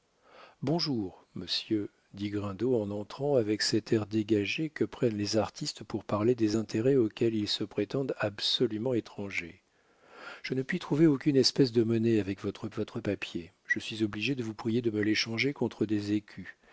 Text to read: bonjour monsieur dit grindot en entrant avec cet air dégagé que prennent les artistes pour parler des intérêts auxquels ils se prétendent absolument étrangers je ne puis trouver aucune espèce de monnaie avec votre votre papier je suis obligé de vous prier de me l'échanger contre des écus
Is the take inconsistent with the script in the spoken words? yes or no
no